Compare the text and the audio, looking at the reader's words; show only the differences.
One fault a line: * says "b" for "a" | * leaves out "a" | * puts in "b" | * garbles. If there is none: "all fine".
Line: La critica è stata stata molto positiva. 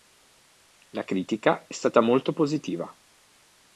* leaves out "stata"